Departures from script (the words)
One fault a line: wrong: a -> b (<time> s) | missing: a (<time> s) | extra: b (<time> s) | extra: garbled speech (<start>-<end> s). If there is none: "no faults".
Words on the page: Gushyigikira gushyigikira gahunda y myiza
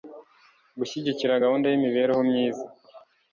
missing: gushyigikira (1.4 s)
extra: imibereho (1.8 s)